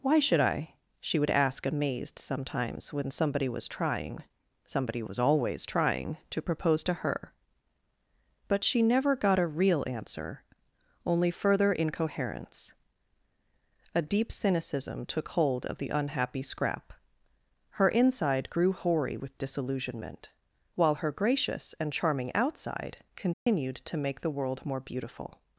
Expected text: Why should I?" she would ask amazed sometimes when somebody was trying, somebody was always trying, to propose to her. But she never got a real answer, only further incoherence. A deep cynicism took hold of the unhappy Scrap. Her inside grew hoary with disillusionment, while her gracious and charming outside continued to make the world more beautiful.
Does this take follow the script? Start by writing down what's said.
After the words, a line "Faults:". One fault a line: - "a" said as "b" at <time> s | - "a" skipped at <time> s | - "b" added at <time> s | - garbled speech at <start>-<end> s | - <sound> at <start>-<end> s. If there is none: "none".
Why should I?" she would ask amazed sometimes when somebody was trying, somebody was always trying, to propose to her. But she never got a real answer, only further incoherence. A deep cynicism took hold of the unhappy Scrap. Her inside grew hoary with disillusionment, while her gracious and charming outside continued to make the world more beautiful.
Faults:
- dropout at 23.3-23.5 s